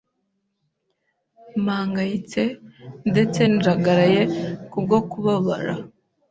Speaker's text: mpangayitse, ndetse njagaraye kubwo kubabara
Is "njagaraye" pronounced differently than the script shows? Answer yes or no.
no